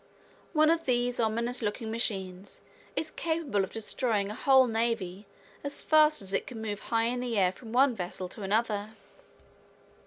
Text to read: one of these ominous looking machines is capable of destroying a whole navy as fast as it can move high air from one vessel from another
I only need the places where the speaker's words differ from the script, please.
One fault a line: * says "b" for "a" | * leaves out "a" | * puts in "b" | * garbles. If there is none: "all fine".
* puts in "in the"
* says "to" for "from"